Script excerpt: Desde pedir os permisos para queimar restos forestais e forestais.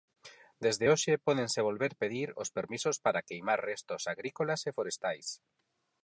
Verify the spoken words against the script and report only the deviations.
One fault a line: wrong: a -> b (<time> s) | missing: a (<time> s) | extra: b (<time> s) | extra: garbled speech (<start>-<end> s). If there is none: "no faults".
extra: hoxe pódense volver (0.9 s)
wrong: forestais -> agrícolas (4.1 s)